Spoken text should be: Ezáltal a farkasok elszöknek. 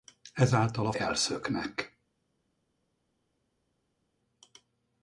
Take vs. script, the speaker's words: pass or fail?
fail